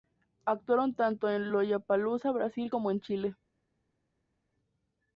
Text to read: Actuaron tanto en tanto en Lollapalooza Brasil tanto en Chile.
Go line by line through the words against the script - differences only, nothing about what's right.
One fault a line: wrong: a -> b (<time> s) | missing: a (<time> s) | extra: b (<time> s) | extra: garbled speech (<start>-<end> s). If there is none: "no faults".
missing: tanto en (1.5 s)
wrong: tanto -> como (2.7 s)